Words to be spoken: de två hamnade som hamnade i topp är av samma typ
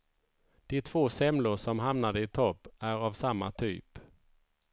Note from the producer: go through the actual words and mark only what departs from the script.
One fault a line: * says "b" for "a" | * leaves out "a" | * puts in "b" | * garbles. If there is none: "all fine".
* says "semlor" for "hamnade"